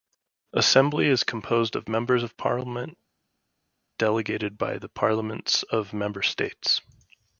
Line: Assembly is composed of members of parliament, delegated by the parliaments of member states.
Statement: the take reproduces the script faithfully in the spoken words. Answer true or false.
true